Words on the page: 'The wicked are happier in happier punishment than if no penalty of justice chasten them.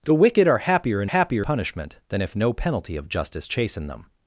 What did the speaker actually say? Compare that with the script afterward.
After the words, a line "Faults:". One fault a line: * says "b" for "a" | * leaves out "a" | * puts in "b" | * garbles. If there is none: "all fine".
'The wicked are happier in happier punishment than if no penalty of justice chasten them.
Faults:
all fine